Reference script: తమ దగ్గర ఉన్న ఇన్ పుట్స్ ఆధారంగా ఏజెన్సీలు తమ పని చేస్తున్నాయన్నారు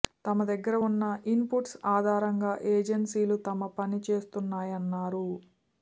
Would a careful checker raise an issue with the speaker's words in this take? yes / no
no